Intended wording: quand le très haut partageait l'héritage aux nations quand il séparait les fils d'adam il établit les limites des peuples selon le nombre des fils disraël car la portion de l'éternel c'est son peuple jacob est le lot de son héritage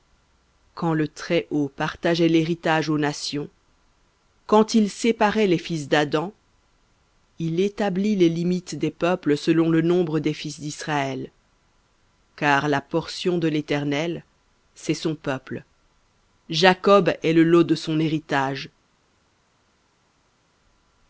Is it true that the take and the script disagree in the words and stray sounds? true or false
false